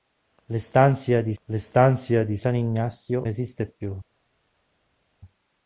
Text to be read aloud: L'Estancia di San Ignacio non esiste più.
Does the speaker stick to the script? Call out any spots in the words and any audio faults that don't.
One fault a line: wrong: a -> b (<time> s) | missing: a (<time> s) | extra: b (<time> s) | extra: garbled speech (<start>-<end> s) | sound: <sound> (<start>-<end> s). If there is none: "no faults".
extra: l'estancia di (1.4 s)
missing: non (3.3 s)